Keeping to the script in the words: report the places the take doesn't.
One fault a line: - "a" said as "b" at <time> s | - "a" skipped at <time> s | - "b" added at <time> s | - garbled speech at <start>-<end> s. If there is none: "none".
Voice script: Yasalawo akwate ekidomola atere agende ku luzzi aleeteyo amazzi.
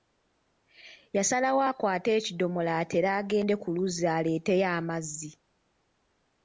none